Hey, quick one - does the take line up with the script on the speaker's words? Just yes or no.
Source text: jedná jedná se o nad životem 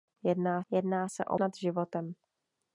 yes